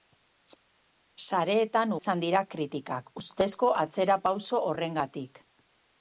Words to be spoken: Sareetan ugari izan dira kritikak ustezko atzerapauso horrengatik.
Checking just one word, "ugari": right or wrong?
wrong